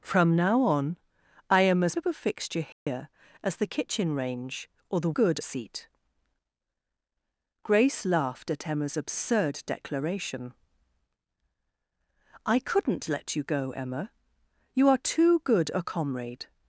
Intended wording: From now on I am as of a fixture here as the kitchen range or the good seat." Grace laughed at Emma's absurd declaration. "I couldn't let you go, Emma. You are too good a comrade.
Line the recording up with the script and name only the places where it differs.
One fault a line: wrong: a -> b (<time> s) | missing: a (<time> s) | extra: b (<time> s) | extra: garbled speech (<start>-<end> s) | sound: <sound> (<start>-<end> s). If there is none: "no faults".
sound: dropout (2.7-2.9 s)